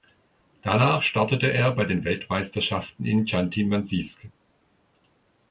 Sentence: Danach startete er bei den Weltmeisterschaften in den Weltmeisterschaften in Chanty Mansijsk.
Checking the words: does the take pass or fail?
fail